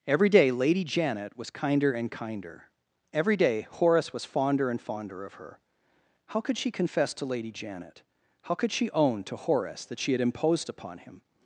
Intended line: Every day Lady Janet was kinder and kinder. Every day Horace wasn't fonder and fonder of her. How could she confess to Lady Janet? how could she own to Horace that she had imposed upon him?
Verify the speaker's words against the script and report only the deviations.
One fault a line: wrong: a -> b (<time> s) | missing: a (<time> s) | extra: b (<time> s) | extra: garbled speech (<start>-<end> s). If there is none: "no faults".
wrong: wasn't -> was (4.1 s)